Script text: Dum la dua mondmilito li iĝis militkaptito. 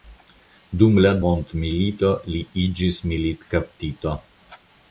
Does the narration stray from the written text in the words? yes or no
yes